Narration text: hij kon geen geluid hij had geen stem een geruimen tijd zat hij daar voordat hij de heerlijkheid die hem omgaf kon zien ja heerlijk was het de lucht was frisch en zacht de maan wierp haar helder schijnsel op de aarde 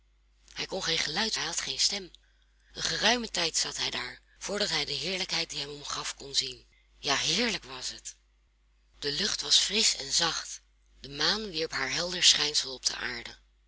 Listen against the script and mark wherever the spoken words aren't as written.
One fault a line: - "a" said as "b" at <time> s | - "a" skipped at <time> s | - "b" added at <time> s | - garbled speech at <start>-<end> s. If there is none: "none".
none